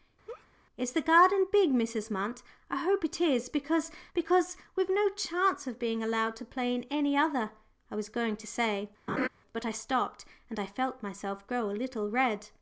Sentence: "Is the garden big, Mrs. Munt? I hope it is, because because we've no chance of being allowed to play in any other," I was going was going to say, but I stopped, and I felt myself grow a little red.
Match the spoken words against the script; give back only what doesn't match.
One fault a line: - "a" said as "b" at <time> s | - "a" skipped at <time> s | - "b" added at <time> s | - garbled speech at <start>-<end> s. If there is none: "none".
- "was going" skipped at 8.4 s